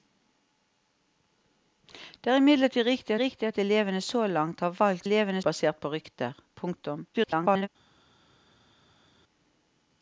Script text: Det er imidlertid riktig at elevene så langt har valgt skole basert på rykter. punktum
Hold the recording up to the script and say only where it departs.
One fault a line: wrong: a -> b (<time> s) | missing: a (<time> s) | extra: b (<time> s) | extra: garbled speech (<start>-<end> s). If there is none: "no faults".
extra: riktig (3.2 s)
wrong: skole -> elevene (5.1 s)
extra: garbled speech (7.1-7.7 s)